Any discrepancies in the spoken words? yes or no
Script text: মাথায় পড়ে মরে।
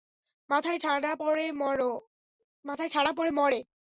yes